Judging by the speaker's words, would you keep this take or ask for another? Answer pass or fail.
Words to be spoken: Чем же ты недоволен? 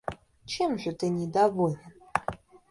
pass